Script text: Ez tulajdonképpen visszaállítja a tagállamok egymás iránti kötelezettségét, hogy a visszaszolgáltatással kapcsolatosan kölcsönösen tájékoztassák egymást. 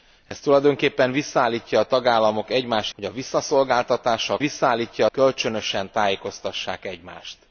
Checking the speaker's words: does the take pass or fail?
fail